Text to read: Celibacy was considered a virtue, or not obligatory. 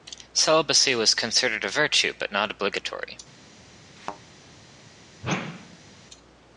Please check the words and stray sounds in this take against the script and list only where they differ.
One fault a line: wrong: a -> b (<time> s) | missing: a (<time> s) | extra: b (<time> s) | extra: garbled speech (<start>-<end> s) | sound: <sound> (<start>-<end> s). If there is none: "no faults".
wrong: or -> but (2.2 s)
sound: thud (4.0-4.2 s)
sound: whoosh (5.2-5.9 s)